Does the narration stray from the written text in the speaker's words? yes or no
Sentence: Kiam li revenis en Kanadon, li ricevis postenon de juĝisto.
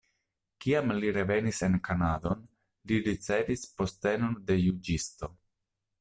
no